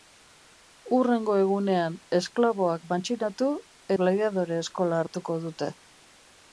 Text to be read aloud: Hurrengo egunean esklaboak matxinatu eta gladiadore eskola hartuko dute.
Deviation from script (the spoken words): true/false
true